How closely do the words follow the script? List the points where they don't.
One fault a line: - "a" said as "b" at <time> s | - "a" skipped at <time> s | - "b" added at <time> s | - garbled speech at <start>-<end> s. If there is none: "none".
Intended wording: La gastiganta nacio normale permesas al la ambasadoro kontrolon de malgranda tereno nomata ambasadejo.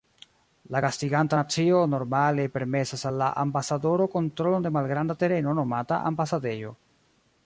none